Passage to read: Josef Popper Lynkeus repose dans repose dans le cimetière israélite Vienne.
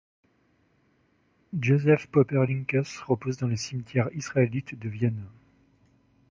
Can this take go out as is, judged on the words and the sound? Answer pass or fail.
fail